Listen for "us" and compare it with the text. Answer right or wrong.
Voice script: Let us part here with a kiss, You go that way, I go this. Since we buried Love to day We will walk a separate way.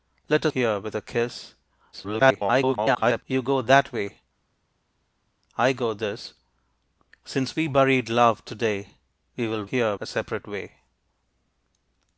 wrong